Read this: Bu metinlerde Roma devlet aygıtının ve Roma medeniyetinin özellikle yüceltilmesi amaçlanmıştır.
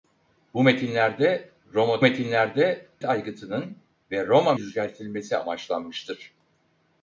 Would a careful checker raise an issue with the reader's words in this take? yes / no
yes